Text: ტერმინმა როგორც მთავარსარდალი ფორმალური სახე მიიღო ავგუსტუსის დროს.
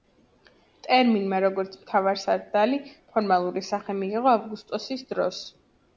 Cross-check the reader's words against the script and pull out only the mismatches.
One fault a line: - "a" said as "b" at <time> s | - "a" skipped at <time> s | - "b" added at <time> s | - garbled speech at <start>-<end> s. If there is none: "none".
none